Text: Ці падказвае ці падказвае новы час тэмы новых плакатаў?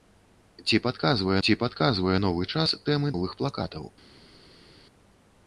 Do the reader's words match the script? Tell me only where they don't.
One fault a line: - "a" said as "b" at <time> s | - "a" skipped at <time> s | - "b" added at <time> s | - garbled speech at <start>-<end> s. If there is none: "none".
none